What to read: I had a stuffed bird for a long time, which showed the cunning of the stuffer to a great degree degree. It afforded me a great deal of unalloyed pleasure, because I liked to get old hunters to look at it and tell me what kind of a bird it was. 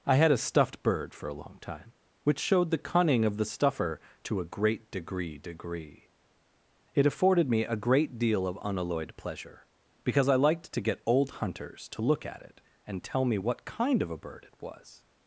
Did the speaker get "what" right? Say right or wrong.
right